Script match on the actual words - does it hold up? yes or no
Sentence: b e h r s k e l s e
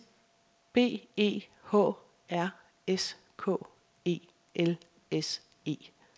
yes